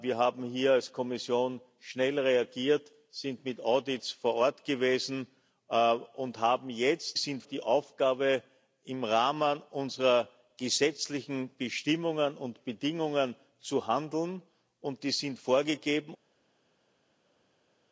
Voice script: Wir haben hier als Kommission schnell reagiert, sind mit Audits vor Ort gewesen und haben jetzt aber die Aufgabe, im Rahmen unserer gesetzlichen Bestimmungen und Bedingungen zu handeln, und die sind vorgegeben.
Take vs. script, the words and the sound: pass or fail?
fail